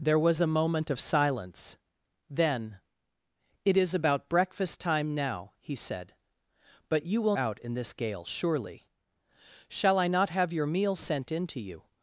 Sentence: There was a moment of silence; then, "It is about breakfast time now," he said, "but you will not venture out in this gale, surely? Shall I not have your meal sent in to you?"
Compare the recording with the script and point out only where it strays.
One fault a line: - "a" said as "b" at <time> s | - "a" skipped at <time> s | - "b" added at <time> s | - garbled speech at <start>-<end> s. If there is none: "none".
- "not venture" skipped at 7.4 s